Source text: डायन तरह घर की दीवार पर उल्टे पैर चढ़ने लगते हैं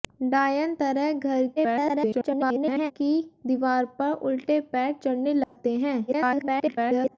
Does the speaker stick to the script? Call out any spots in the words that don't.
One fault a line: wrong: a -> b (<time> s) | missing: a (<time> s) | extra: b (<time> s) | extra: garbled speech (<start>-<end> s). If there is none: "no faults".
extra: garbled speech (1.6-2.9 s)
extra: garbled speech (6.1-7.2 s)